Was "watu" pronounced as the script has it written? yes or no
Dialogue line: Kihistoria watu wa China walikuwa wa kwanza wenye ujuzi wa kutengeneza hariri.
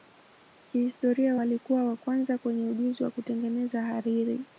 no